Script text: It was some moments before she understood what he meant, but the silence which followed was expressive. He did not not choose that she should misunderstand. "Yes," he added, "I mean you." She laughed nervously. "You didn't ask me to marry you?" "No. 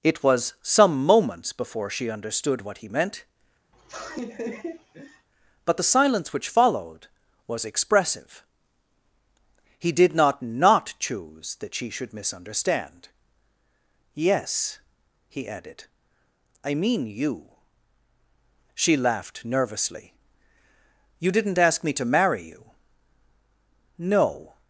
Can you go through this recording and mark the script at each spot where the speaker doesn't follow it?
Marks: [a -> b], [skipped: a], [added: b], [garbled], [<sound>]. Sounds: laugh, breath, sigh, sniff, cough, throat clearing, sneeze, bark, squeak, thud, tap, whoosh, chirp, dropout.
It was some moments before she understood what he meant, [laugh] but the silence which followed was expressive. He did not not choose that she should misunderstand. "Yes," he added, "I mean you." She laughed nervously. "You didn't ask me to marry you?" "No.